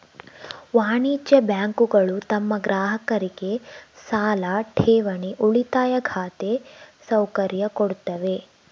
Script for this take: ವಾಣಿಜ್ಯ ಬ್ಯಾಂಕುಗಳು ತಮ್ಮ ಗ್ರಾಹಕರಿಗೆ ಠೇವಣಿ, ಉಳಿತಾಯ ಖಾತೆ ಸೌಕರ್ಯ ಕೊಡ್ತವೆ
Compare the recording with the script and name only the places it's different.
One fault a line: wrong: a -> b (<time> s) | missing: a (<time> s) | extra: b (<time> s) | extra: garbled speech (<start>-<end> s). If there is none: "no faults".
extra: ಸಾಲ (4.0 s)